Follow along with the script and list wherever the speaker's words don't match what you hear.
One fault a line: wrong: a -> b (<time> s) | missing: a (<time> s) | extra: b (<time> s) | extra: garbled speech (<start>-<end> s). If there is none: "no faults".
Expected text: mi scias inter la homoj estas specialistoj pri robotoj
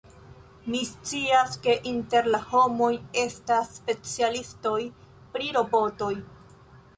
extra: ke (1.6 s)